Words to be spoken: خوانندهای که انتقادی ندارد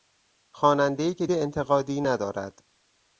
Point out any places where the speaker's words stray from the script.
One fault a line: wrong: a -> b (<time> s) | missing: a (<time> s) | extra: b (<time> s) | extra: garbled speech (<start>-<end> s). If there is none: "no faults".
no faults